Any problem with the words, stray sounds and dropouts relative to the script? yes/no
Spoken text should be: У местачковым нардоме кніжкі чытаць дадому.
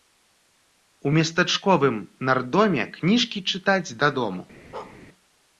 yes